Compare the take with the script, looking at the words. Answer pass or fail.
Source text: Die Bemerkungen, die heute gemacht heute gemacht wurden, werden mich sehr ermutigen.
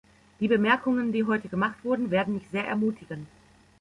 fail